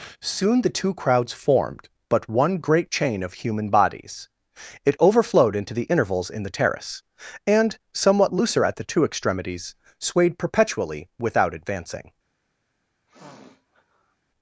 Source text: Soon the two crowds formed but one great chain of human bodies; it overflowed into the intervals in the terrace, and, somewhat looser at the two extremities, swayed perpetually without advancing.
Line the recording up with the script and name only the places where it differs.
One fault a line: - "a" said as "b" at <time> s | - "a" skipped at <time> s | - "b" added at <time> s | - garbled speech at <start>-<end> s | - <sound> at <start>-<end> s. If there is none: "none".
- sniff at 13.1-14.2 s